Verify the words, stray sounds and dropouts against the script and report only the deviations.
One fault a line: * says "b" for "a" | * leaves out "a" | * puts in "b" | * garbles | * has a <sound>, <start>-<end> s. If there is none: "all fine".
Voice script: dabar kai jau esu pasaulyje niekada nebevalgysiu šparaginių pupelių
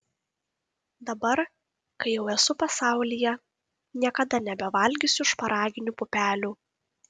all fine